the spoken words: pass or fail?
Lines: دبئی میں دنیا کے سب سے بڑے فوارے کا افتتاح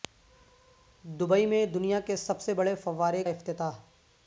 fail